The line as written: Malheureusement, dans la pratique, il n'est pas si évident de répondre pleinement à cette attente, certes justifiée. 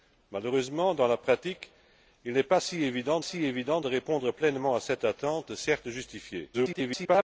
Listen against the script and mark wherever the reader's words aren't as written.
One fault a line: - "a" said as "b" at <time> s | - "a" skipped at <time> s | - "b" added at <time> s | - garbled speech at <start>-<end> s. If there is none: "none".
- "si évident" added at 3.2 s
- garbled speech at 6.5-7.2 s